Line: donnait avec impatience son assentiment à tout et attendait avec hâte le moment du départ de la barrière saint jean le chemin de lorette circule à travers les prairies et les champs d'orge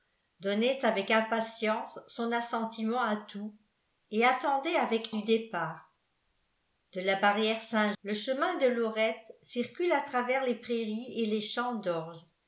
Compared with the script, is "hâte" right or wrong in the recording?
wrong